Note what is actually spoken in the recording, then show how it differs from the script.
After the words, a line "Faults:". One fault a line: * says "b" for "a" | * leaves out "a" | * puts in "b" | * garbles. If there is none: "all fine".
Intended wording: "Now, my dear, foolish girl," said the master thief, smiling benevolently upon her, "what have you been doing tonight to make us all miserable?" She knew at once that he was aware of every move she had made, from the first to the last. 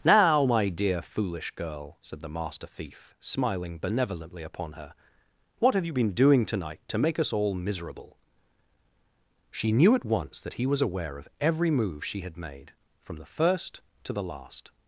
"Now, my dear, foolish girl," said the master thief, smiling benevolently upon her, "what have you been doing tonight to make us all miserable?" She knew at once that he was aware of every move she had made, from the first to the last.
Faults:
all fine